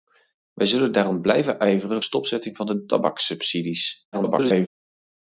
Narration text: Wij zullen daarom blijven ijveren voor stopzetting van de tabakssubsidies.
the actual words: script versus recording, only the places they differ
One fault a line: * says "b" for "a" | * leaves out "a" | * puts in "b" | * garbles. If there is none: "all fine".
* leaves out "voor"
* garbles